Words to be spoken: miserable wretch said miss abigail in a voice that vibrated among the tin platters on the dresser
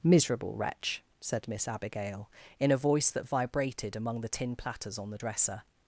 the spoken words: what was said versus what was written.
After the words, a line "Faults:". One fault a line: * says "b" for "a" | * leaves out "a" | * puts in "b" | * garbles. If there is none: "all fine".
miserable wretch said miss abigail in a voice that vibrated among the tin platters on the dresser
Faults:
all fine